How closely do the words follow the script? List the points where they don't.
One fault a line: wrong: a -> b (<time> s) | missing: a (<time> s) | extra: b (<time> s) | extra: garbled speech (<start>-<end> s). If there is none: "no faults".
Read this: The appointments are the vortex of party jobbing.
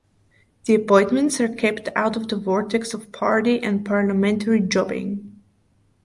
extra: kept out of (1.5 s)
extra: and parliamentary (3.6 s)